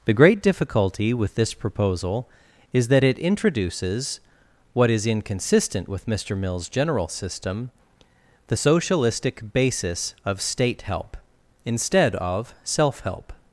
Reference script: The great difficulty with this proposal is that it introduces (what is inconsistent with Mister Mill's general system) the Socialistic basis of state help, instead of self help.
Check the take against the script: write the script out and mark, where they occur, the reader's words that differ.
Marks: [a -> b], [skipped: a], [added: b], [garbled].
The great difficulty with this proposal is that it introduces (what is inconsistent with Mister Mill's general system) the Socialistic basis of state help, instead of self help.